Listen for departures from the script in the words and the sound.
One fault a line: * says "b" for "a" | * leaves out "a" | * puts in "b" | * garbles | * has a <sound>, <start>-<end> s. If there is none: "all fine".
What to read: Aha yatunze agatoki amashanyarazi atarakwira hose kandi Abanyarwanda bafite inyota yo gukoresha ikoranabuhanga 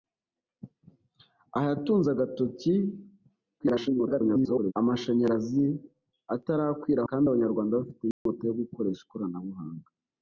* garbles
* leaves out "hose"
* has a dropout, 8.1-8.3 s